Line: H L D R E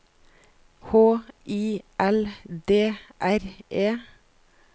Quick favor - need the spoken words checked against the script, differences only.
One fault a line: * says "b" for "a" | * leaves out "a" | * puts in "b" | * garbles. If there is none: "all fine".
* puts in "I"